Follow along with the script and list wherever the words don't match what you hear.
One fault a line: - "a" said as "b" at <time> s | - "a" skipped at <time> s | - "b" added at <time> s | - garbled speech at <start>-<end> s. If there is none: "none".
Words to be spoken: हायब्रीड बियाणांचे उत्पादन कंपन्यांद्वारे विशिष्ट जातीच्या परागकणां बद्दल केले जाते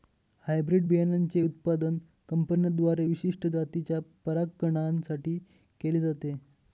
- "बद्दल" said as "साठी" at 5.0 s